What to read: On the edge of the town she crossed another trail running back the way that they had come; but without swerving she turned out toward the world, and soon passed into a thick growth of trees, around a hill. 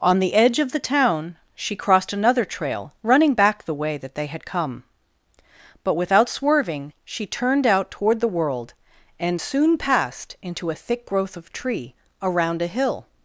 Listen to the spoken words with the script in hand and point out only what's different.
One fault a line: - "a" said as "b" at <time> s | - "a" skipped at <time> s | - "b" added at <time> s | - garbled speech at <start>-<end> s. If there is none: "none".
- "trees" said as "tree" at 11.5 s